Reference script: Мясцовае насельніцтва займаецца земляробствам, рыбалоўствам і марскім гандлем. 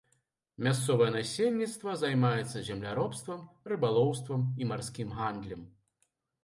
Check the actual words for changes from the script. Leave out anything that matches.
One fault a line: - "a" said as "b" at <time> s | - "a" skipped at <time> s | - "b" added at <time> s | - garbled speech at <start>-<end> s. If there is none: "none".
none